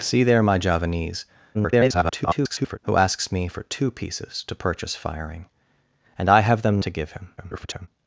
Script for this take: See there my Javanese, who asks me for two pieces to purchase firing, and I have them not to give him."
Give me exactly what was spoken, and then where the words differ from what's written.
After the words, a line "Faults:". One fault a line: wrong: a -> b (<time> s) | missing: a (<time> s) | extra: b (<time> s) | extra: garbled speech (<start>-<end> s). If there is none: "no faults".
See there my Javanese, [garbled] who asks me for two pieces to purchase firing, and I have them to give him." [garbled]
Faults:
extra: garbled speech (1.5-2.8 s)
missing: not (6.8 s)
extra: garbled speech (7.4-7.9 s)